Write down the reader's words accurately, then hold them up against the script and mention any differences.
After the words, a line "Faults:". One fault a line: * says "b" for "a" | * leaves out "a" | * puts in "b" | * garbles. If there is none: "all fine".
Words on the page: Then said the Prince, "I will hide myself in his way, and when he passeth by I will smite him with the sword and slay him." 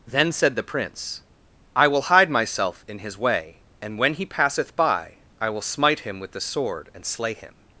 Then said the Prince, "I will hide myself in his way, and when he passeth by I will smite him with the sword and slay him."
Faults:
all fine